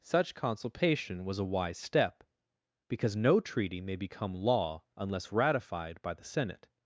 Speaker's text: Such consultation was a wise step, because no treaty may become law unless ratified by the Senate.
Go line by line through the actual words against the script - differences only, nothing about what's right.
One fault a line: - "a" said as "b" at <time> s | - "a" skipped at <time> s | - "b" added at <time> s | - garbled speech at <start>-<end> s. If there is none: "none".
none